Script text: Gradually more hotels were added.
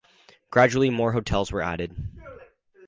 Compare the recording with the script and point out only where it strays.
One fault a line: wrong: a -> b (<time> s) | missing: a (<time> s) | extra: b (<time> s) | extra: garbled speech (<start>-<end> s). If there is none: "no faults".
no faults